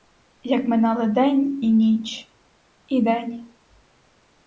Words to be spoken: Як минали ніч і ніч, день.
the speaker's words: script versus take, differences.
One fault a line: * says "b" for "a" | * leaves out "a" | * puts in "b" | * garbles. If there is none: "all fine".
* says "день" for "ніч"
* puts in "і"